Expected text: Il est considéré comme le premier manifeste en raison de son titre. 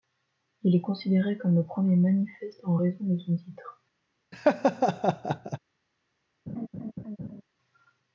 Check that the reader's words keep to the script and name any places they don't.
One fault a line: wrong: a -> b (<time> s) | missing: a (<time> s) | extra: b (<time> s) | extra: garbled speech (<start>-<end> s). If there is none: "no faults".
no faults